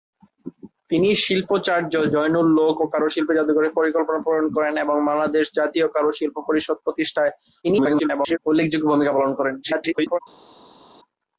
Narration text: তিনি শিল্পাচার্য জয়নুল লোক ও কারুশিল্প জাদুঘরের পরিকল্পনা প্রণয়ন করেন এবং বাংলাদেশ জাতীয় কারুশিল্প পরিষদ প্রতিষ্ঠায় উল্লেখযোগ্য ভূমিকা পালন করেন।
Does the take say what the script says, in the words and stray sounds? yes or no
no